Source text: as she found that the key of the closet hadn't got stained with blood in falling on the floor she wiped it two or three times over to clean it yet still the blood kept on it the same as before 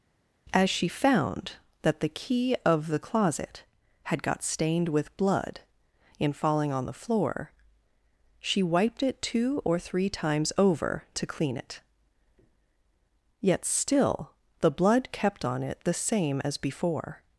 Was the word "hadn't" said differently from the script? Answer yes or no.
yes